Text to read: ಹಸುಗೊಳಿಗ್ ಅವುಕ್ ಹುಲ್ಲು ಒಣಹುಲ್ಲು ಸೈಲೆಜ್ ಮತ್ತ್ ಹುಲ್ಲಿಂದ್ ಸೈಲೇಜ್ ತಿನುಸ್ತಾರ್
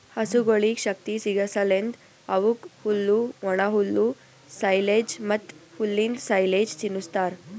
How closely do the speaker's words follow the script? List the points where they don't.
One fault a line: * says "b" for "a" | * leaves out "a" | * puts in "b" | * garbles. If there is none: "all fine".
* puts in "ಶಕ್ತಿ ಸಿಗಸಲೆಂದ್"